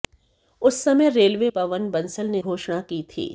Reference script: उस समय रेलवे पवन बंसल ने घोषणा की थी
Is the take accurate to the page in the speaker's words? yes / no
yes